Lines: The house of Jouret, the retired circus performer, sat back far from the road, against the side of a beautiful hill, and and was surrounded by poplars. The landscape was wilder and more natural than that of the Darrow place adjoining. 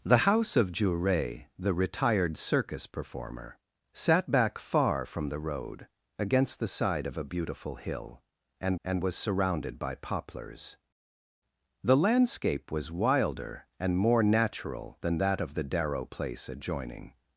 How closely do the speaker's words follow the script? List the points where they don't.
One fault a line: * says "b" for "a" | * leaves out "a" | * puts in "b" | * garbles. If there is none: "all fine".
all fine